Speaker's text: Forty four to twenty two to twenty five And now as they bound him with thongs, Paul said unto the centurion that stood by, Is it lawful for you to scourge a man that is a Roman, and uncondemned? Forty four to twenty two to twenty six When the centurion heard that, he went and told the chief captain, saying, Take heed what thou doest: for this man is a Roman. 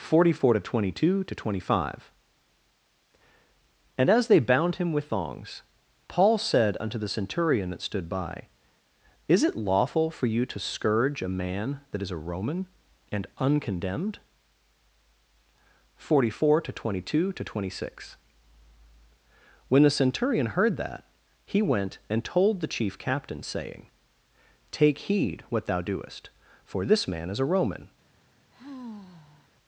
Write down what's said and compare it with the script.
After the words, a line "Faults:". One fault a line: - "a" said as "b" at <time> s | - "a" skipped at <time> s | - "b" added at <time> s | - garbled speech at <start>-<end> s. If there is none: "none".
Forty four to twenty two to twenty five And as they bound him with thongs, Paul said unto the centurion that stood by, Is it lawful for you to scourge a man that is a Roman, and uncondemned? Forty four to twenty two to twenty six When the centurion heard that, he went and told the chief captain, saying, Take heed what thou doest: for this man is a Roman.
Faults:
- "now" skipped at 4.1 s